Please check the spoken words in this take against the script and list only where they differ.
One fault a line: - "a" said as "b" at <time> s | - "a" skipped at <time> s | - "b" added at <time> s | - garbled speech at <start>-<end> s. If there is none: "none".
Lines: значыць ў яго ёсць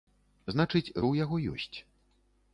none